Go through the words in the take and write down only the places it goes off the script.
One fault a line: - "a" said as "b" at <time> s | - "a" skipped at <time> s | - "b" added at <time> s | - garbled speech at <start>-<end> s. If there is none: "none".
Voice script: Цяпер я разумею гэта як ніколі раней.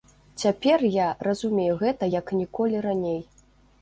none